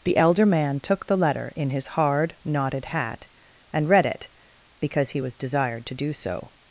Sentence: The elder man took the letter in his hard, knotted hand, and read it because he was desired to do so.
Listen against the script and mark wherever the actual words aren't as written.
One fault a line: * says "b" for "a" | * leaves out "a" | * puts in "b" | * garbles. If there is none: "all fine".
* says "hat" for "hand"